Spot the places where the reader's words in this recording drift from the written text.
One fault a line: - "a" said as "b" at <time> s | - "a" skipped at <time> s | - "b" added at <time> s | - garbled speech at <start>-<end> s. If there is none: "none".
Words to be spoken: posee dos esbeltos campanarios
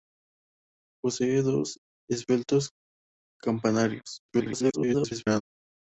- garbled speech at 4.3-5.4 s